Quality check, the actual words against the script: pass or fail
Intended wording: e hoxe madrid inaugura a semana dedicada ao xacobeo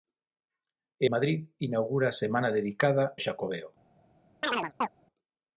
fail